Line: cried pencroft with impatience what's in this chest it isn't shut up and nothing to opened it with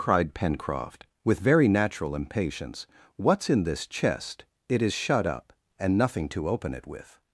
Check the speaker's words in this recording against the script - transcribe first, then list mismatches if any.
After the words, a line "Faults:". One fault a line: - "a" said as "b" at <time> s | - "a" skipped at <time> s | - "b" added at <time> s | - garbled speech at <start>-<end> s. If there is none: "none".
cried pencroft with very natural impatience what's in this chest it is shut up and nothing to open it with
Faults:
- "very natural" added at 1.4 s
- "isn't" said as "is" at 4.8 s
- "opened" said as "open" at 6.5 s